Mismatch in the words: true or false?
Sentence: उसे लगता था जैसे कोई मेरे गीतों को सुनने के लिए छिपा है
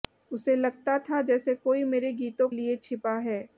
true